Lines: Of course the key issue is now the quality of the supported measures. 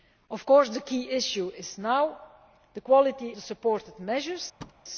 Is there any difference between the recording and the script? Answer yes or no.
yes